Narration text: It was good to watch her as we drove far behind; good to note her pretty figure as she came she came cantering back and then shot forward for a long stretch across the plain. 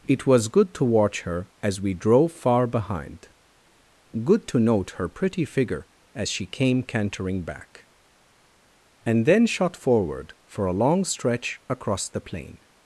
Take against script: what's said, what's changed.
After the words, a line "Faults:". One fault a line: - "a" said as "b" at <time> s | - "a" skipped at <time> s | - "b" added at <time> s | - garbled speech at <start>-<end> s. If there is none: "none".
It was good to watch her as we drove far behind; good to note her pretty figure as she came cantering back and then shot forward for a long stretch across the plain.
Faults:
- "she came" skipped at 6.8 s